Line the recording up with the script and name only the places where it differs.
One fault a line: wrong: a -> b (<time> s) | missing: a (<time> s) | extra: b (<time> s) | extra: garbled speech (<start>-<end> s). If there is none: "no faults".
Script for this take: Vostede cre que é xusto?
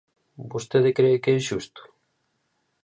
no faults